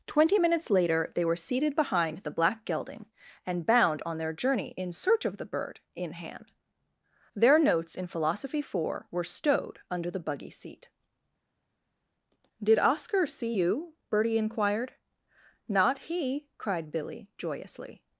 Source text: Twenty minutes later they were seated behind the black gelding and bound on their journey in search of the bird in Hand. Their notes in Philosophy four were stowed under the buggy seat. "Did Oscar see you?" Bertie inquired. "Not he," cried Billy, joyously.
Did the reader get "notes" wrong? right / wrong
right